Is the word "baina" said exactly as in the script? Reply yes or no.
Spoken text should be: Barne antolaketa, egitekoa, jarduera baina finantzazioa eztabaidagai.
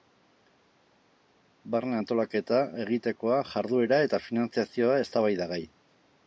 no